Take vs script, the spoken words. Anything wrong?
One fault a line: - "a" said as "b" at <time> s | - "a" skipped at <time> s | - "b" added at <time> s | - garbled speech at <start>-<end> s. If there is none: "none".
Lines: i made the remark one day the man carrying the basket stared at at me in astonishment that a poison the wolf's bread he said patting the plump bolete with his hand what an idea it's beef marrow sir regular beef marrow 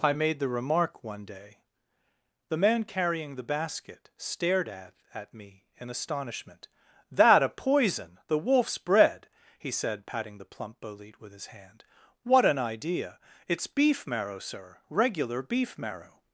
none